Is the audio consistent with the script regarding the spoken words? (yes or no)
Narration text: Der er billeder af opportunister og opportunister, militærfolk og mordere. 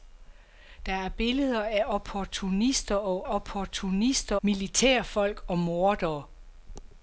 yes